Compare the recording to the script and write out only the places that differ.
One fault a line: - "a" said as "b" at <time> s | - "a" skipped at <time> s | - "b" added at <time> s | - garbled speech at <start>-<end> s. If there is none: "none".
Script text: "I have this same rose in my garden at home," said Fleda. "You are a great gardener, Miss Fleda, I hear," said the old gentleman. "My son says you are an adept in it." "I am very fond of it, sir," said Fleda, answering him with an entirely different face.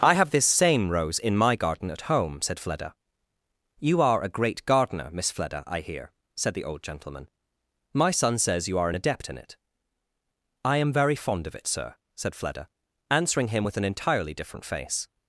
none